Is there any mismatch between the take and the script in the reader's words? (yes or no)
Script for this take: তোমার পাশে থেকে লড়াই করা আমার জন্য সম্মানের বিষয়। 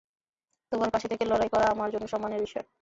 no